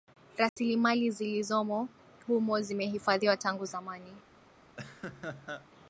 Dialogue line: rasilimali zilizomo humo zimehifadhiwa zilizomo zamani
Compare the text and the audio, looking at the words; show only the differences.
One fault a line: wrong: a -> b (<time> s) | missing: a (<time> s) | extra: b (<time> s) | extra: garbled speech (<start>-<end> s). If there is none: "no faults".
wrong: zilizomo -> tangu (3.4 s)